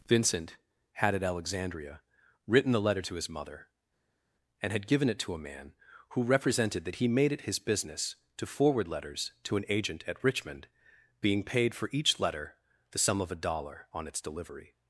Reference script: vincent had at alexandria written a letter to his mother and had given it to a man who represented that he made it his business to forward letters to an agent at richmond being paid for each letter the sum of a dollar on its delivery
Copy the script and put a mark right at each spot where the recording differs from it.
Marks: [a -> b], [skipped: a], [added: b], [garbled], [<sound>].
vincent had at alexandria written [a -> the] letter to his mother and had given it to a man who represented that he made it his business to forward letters to an agent at richmond being paid for each letter the sum of a dollar on its delivery